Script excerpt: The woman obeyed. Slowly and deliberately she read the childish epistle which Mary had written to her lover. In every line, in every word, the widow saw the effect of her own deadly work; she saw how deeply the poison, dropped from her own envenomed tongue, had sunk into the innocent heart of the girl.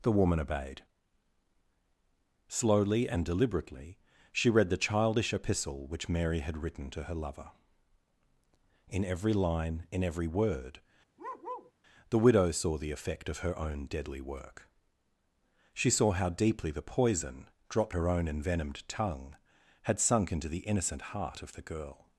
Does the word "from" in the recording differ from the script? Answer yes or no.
yes